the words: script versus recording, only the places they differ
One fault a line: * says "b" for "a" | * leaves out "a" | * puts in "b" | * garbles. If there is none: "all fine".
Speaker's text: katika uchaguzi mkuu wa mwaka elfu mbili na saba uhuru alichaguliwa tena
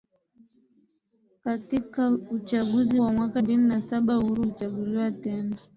* leaves out "mkuu"
* leaves out "elfu"